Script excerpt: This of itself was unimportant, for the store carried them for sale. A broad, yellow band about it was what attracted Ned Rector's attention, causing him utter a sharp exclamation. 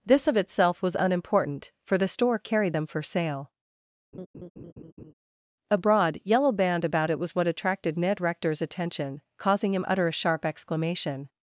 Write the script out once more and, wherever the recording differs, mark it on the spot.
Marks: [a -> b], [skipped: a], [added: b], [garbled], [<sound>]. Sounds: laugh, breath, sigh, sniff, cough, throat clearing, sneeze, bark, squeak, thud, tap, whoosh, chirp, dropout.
This of itself was unimportant, for the store carried them for sale. [laugh] A broad, yellow band about it was what attracted Ned Rector's attention, causing him utter a sharp exclamation.